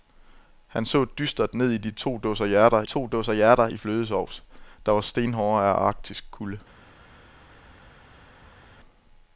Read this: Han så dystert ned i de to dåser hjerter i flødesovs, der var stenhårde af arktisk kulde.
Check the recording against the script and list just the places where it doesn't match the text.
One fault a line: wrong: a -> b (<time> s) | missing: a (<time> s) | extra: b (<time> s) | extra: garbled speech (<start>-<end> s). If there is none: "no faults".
extra: to dåser hjerter (2.8 s)